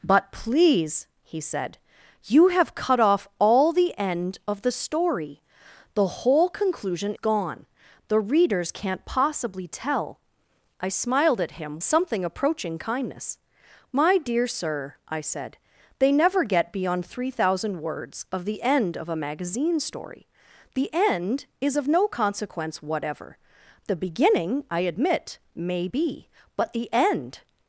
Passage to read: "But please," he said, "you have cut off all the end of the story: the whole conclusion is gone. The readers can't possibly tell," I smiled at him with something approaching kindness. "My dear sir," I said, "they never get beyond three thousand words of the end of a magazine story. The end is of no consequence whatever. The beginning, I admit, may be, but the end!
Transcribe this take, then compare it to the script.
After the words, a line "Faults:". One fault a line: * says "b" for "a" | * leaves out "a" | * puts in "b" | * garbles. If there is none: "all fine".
"But please," he said, "you have cut off all the end of the story: the whole conclusion gone. The readers can't possibly tell," I smiled at him something approaching kindness. "My dear sir," I said, "they never get beyond three thousand words of the end of a magazine story. The end is of no consequence whatever. The beginning, I admit, may be, but the end!
Faults:
* leaves out "is"
* leaves out "with"